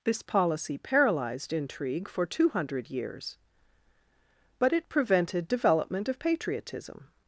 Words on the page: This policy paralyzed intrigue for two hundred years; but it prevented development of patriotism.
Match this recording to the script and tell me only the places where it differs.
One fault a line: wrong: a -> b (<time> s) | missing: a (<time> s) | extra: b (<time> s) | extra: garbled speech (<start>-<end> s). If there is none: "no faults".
no faults